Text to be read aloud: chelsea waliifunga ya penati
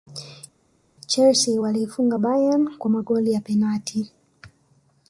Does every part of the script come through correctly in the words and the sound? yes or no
no